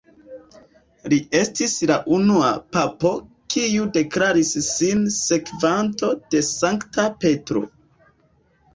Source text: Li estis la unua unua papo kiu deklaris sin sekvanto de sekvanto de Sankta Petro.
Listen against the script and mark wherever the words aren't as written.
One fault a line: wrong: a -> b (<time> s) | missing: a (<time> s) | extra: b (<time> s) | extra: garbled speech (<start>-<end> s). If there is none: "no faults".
missing: unua (2.5 s)
missing: sekvanto de (6.5 s)